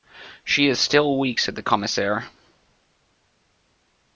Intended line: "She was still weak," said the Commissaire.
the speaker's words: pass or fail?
fail